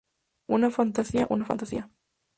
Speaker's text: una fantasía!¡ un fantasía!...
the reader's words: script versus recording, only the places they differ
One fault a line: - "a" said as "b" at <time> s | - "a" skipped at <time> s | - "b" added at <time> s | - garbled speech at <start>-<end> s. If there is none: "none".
- "un" said as "una" at 1.3 s